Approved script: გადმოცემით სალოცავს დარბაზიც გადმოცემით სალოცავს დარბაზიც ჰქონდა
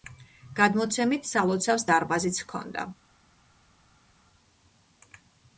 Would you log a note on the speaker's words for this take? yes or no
yes